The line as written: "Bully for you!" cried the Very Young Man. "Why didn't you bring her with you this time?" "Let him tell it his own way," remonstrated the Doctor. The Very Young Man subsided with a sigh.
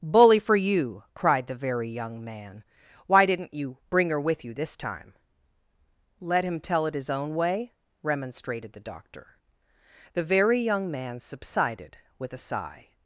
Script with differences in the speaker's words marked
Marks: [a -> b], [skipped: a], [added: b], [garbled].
"Bully for you!" cried the Very Young Man. "Why didn't you bring her with you this time?" "Let him tell it his own way," remonstrated the Doctor. The Very Young Man subsided with a sigh.